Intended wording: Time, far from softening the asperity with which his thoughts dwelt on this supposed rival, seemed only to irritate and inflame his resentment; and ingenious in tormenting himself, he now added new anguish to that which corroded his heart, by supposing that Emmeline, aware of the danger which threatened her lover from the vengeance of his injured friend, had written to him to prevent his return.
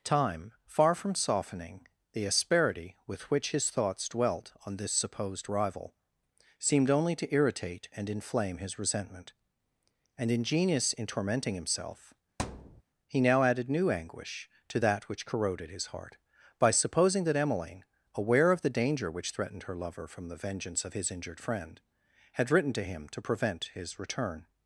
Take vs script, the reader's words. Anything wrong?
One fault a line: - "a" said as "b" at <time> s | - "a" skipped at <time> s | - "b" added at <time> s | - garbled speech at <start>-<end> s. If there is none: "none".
none